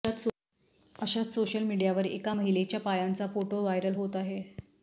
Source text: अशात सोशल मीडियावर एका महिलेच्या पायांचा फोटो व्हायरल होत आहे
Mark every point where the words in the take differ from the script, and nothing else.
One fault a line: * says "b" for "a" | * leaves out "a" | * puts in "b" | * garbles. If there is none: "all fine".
all fine